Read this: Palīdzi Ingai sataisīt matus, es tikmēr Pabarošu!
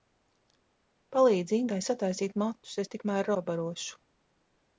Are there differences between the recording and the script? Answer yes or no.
no